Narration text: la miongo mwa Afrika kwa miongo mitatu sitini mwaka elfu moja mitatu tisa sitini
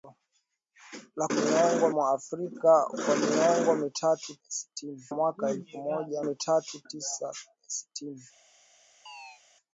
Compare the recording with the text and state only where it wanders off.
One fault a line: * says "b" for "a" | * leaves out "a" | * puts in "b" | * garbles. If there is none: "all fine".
all fine